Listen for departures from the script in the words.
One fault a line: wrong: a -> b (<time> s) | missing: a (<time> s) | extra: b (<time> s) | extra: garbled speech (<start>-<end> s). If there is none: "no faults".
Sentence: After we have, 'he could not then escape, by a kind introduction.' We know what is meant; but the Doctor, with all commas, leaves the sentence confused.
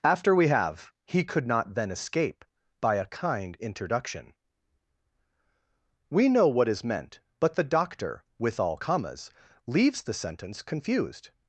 no faults